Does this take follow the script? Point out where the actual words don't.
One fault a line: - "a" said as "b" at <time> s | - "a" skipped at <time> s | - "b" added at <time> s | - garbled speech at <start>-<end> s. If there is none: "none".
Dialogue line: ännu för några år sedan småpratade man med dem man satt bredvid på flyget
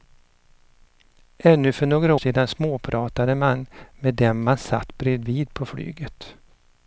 - "år" skipped at 2.1 s